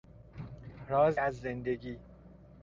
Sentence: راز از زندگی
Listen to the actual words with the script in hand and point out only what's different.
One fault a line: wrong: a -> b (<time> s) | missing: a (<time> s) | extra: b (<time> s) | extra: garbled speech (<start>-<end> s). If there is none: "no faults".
no faults